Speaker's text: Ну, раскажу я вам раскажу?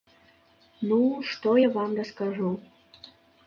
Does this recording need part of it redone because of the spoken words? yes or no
yes